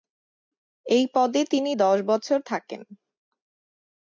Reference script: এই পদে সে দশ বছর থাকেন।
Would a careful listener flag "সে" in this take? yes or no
yes